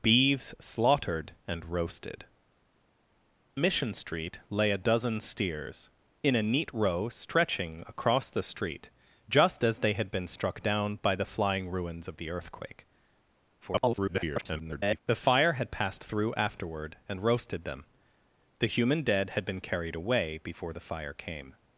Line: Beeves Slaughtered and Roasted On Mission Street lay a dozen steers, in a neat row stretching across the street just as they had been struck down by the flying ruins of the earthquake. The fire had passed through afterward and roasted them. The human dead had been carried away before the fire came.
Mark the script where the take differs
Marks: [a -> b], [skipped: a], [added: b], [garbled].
Beeves Slaughtered and Roasted [skipped: On] Mission Street lay a dozen steers, in a neat row stretching across the street just as they had been struck down by the flying ruins of the earthquake. [garbled] The fire had passed through afterward and roasted them. The human dead had been carried away before the fire came.